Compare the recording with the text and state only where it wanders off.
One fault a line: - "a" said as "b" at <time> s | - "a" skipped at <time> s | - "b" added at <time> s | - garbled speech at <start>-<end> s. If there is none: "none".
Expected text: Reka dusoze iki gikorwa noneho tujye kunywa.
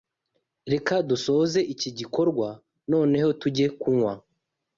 none